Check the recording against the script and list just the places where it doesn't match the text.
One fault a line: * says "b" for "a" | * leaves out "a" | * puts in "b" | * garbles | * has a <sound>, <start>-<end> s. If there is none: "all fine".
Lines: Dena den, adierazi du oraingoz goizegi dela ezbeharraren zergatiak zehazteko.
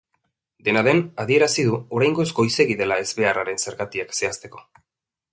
all fine